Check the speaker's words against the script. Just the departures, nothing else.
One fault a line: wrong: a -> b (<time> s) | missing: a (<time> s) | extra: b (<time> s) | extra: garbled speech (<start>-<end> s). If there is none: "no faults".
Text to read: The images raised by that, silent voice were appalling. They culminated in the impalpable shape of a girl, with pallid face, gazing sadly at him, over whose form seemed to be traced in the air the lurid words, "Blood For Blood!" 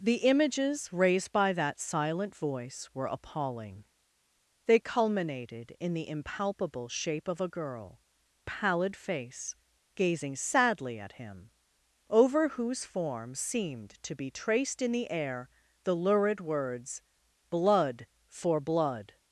missing: with (8.0 s)